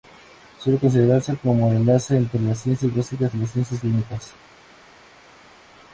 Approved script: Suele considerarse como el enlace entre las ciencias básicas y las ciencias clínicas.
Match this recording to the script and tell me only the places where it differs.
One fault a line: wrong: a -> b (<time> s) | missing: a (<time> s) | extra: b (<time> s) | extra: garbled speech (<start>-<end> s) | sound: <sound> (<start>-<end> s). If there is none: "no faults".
no faults